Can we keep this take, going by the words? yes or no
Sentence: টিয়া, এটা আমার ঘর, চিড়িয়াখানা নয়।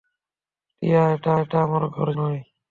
no